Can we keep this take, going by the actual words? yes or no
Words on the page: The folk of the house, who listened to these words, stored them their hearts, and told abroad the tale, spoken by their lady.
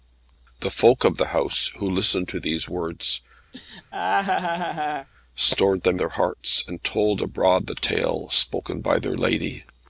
yes